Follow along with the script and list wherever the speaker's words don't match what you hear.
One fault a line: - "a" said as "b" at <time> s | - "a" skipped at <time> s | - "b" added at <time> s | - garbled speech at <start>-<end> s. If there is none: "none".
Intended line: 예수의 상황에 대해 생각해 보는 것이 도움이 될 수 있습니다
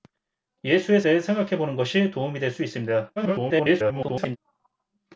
- "상황에" skipped at 1.0 s
- garbled speech at 3.2-4.4 s